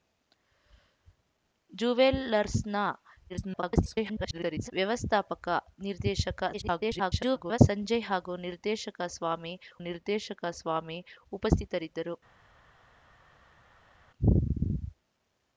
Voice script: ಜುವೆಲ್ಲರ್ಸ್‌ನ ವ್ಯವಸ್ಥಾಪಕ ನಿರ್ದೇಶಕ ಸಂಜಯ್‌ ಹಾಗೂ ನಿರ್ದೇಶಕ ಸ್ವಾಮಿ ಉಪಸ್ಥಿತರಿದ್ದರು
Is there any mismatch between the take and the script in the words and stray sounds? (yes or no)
yes